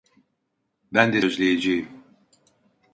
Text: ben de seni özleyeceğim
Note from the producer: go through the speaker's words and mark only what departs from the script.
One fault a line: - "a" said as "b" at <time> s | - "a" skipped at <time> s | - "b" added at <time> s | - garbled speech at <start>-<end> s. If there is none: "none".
- "seni" skipped at 1.2 s